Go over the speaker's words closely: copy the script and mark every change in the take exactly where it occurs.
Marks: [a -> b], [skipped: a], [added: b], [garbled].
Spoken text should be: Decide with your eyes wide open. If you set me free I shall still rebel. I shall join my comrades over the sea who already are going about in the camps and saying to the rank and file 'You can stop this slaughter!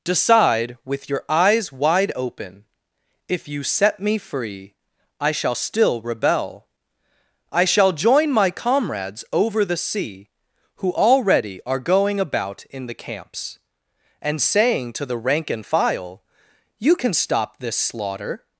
Decide with your eyes wide open. If you set me free I shall still rebel. I shall join my comrades over the sea who already are going about in the camps and saying to the rank and file 'You can stop this slaughter!